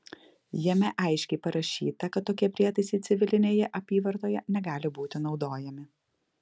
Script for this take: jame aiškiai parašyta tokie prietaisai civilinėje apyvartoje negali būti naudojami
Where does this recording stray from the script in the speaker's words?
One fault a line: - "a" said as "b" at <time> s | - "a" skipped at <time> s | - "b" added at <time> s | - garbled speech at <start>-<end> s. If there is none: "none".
- "kad" added at 2.1 s